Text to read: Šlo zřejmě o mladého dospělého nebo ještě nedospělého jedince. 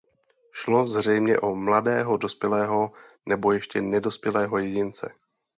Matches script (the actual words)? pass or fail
pass